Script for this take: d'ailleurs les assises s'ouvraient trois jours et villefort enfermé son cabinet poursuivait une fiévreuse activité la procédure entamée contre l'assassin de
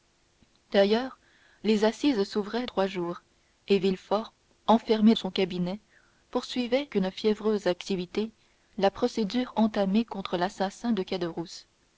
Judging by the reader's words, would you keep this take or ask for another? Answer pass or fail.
pass